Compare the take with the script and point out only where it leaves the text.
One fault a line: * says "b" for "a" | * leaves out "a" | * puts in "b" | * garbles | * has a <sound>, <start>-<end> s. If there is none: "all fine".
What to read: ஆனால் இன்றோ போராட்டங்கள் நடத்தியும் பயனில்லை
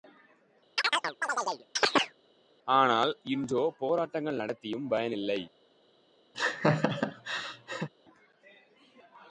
* has a chirp, 0.8-2.2 s
* has a laugh, 6.3-7.9 s